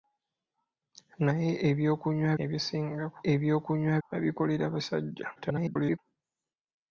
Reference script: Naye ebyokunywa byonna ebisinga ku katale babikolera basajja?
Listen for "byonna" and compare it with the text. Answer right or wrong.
wrong